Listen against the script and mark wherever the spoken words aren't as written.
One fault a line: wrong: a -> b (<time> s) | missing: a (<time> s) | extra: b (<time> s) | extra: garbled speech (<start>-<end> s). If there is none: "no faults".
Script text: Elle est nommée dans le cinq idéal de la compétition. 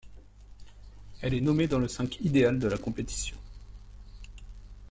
no faults